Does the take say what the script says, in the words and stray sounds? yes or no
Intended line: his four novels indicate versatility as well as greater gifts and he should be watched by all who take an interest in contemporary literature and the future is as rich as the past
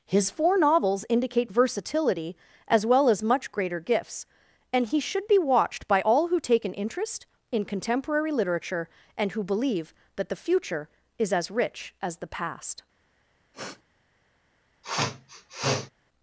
no